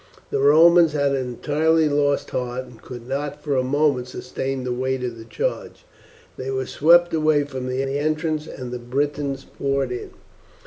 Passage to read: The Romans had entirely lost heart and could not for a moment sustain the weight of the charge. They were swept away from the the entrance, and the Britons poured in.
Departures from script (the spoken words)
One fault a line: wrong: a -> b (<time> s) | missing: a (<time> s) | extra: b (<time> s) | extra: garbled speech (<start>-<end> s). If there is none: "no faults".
no faults